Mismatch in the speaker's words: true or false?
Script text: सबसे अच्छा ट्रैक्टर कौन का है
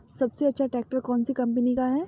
true